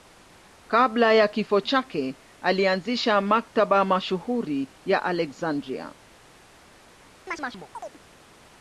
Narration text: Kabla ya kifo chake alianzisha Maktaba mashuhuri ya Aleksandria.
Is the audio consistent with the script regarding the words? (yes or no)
yes